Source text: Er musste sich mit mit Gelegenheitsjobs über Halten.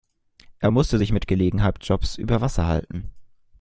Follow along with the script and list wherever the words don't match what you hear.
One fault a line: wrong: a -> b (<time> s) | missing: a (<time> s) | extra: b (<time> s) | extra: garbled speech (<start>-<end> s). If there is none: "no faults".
missing: mit (1.3 s)
extra: Wasser (2.4 s)